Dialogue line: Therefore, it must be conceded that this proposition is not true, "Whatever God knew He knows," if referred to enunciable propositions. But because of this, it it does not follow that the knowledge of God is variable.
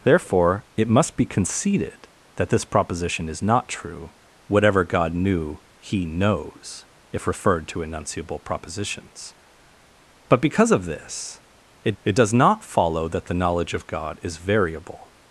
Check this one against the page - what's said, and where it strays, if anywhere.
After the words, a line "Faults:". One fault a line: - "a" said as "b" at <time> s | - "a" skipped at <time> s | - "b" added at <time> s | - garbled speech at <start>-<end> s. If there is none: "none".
Therefore, it must be conceded that this proposition is not true, "Whatever God knew He knows," if referred to enunciable propositions. But because of this, it it does not follow that the knowledge of God is variable.
Faults:
none